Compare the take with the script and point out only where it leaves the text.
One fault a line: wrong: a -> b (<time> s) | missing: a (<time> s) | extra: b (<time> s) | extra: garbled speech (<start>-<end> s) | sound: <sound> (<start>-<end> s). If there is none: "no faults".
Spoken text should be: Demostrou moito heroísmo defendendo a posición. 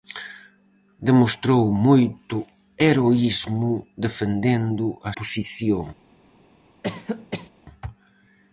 sound: cough (6.8-7.5 s)